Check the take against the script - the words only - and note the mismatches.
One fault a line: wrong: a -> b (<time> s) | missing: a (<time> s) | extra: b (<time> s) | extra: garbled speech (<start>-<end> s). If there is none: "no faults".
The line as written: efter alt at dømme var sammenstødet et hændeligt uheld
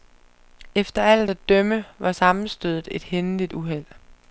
no faults